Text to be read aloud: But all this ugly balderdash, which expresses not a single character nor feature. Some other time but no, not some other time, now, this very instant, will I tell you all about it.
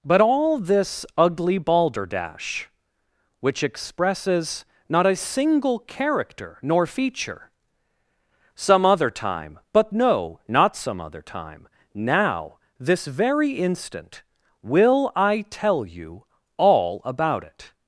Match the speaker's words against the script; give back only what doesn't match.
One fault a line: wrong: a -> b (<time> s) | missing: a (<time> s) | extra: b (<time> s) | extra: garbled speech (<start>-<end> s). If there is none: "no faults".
no faults